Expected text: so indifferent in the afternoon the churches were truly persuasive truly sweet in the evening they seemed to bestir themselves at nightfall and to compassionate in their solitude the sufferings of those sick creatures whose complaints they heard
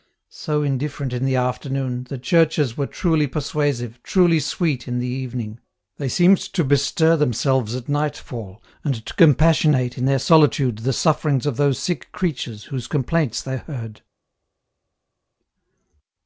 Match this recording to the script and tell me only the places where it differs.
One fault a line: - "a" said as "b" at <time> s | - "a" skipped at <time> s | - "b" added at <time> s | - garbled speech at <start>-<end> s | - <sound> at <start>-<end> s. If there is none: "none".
none